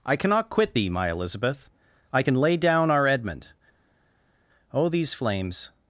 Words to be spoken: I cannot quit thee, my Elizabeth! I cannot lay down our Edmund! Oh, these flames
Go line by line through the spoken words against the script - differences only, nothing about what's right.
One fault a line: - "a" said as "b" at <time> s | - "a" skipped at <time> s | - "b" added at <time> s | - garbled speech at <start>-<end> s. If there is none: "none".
- "cannot" said as "can" at 2.2 s